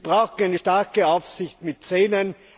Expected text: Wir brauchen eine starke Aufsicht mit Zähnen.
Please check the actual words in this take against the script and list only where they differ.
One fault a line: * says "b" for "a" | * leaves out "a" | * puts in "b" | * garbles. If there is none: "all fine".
all fine